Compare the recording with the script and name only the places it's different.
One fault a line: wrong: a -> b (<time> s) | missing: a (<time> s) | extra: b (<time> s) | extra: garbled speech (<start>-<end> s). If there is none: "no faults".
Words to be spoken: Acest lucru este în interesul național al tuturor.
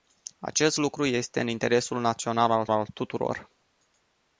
extra: al (2.7 s)